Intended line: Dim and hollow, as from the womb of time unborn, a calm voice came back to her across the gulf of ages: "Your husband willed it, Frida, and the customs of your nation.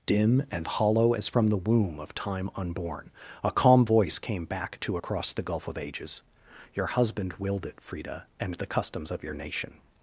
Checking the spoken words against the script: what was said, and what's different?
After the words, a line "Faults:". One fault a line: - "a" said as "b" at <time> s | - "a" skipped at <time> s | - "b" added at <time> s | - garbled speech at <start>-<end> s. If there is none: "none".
Dim and hollow, as from the womb of time unborn, a calm voice came back to across the gulf of ages: "Your husband willed it, Frida, and the customs of your nation.
Faults:
- "her" skipped at 5.0 s